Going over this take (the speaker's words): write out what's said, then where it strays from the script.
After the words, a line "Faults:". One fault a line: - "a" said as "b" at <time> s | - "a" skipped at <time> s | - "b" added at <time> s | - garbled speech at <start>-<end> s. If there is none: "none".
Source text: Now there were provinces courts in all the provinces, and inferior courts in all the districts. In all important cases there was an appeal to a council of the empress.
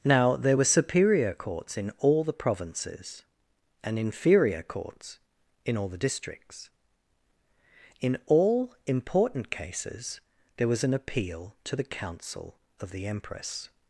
Now there were superior courts in all the provinces, and inferior courts in all the districts. In all important cases there was an appeal to the council of the empress.
Faults:
- "provinces" said as "superior" at 0.8 s
- "a" said as "the" at 11.7 s